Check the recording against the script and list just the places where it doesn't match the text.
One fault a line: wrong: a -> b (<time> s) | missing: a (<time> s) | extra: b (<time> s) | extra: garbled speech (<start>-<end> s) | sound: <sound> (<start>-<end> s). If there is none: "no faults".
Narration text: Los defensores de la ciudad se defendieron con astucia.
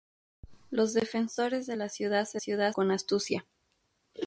wrong: defendieron -> ciudad (2.4 s)